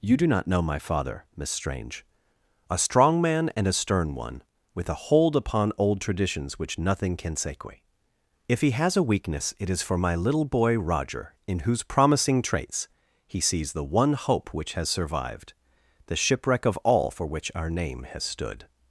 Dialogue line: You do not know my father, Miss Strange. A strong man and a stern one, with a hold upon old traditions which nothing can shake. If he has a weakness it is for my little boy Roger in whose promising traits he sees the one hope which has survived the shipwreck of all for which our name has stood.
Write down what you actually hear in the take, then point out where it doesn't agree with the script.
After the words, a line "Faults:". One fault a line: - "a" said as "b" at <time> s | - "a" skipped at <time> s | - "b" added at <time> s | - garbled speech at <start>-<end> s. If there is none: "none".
You do not know my father, Miss Strange. A strong man and a stern one, with a hold upon old traditions which nothing can sequi. If he has a weakness it is for my little boy Roger in whose promising traits he sees the one hope which has survived the shipwreck of all for which our name has stood.
Faults:
- "shake" said as "sequi" at 7.3 s